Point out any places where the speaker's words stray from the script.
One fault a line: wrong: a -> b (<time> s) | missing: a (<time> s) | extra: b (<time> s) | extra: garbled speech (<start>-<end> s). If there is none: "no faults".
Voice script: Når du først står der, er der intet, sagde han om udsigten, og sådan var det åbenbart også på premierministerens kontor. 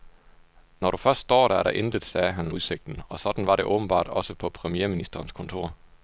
missing: om (2.5 s)